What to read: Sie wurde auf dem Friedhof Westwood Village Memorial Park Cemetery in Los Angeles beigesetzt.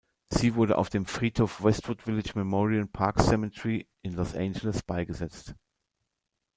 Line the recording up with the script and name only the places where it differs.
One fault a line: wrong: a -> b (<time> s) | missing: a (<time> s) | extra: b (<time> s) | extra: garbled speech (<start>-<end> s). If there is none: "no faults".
no faults